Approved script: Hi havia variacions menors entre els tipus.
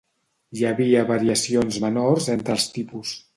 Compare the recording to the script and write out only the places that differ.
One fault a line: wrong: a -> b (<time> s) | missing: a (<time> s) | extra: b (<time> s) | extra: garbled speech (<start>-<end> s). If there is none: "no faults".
no faults